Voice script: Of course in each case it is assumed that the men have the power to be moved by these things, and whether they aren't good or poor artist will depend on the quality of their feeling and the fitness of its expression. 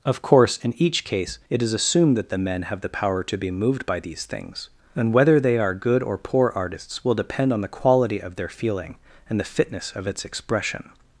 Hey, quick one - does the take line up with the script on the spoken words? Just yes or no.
no